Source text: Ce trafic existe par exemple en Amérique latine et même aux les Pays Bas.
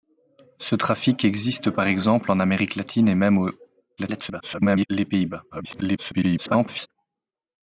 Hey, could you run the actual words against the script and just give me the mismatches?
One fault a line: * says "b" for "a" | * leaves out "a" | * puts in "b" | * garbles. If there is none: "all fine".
* garbles
* garbles